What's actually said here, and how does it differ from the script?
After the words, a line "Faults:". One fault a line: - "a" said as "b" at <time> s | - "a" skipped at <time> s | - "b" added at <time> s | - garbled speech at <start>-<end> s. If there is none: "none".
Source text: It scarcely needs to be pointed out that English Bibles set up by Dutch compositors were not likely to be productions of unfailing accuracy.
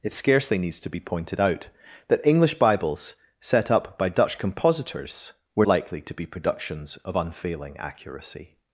It scarcely needs to be pointed out that English Bibles set up by Dutch compositors were likely to be productions of unfailing accuracy.
Faults:
- "not" skipped at 5.7 s